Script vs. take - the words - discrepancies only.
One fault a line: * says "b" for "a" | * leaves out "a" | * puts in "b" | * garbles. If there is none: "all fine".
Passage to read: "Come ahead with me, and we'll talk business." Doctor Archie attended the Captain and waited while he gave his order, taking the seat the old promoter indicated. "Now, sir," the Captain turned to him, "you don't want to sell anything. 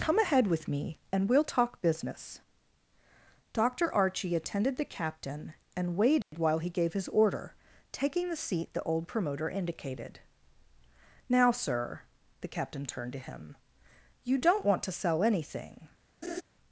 all fine